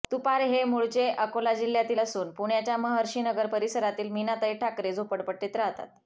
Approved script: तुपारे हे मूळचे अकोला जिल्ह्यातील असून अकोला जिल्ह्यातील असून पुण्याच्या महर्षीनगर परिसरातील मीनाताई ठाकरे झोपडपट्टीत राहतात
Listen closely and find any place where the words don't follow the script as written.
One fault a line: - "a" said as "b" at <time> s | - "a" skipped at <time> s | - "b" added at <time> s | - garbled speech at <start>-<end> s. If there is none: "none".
- "अकोला जिल्ह्यातील असून" skipped at 2.3 s